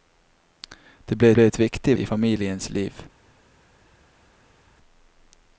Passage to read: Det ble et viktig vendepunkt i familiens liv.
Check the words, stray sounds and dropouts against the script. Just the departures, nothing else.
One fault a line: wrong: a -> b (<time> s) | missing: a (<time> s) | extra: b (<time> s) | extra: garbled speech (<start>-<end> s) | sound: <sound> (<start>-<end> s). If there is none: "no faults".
extra: ble (1.3 s)
missing: vendepunkt (2.0 s)